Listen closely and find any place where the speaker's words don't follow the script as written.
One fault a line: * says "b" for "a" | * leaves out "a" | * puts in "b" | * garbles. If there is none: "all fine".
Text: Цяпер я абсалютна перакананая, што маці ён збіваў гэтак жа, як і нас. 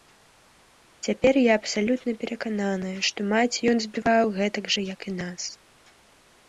all fine